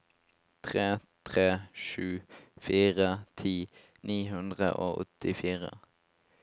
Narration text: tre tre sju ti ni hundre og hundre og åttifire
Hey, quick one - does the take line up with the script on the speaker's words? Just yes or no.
no